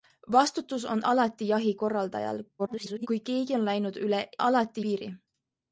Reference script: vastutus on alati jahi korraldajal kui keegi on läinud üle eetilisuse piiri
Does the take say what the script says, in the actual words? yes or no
no